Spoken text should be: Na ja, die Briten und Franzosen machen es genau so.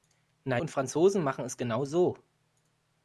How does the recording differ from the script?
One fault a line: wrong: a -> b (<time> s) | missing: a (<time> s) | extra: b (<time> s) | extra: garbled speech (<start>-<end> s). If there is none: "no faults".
missing: ja die Briten (0.6 s)